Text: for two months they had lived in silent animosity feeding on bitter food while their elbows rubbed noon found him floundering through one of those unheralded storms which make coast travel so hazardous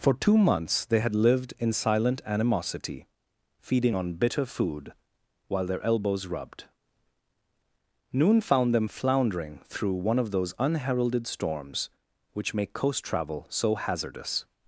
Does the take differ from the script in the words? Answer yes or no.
yes